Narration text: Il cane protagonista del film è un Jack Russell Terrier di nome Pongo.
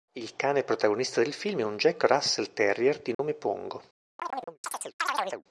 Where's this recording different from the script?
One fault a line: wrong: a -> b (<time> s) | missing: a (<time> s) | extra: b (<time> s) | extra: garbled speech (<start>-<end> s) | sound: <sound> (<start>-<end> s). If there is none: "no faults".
sound: dropout (3.1-3.2 s)
sound: chirp (4.2-5.4 s)